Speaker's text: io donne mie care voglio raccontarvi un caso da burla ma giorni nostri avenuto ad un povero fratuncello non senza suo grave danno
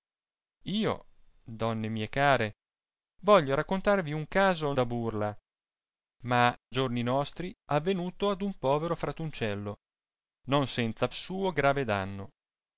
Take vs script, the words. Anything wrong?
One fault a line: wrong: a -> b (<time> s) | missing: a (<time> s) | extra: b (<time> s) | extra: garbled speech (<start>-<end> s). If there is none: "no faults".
no faults